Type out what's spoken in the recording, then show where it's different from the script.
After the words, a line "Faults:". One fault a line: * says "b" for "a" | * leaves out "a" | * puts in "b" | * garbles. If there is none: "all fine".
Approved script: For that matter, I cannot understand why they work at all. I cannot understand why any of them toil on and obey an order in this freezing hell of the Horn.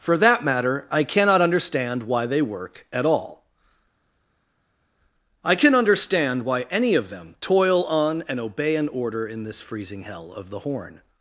For that matter, I cannot understand why they work at all. I can understand why any of them toil on and obey an order in this freezing hell of the Horn.
Faults:
* says "can" for "cannot"